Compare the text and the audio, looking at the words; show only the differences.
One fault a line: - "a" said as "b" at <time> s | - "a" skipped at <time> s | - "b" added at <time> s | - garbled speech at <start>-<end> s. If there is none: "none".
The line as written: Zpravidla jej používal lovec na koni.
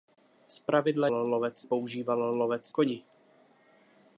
- "jej" said as "lovec" at 1.1 s
- "na" skipped at 2.7 s